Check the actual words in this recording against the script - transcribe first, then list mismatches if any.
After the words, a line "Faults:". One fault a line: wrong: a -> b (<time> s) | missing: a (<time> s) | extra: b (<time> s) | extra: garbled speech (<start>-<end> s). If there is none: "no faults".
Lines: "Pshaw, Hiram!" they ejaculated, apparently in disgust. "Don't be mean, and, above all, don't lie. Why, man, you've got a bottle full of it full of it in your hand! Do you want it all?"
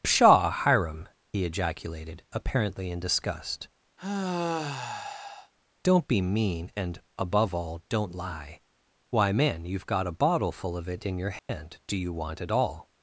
"Pshaw, Hiram!" he ejaculated, apparently in disgust. "Don't be mean, and, above all, don't lie. Why, man, you've got a bottle full of it in your hand! Do you want it all?"
Faults:
wrong: they -> he (1.3 s)
missing: full of it (11.1 s)